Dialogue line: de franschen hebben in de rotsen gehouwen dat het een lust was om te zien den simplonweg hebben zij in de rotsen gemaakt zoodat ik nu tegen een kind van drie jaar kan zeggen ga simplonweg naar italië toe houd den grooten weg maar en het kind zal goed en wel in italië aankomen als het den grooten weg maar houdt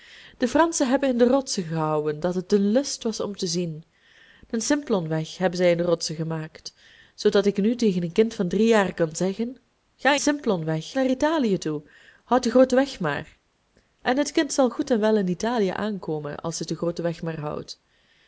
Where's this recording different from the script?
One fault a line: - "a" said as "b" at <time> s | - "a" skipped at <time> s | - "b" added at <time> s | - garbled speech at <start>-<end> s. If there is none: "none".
none